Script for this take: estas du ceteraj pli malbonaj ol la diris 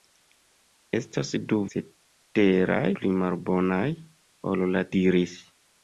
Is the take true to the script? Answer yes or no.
yes